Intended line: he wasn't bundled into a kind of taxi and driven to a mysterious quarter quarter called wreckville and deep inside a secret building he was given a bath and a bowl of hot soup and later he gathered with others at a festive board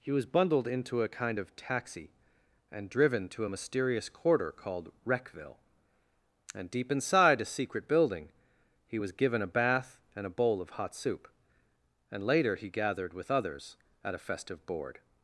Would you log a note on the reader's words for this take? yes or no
yes